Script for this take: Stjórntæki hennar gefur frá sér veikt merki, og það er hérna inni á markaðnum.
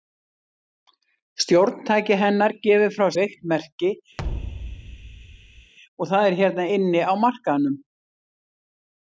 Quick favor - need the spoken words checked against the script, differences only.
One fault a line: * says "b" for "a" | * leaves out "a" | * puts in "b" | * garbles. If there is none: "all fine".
* leaves out "sér"